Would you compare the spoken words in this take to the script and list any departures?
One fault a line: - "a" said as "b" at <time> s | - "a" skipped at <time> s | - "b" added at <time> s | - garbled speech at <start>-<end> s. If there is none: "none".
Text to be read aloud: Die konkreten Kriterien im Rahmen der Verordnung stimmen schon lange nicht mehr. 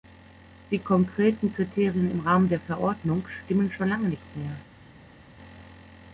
none